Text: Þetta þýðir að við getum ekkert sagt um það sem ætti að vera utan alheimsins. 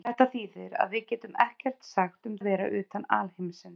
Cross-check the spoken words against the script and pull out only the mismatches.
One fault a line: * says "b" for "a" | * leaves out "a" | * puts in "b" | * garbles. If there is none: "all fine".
* leaves out "það sem ætti"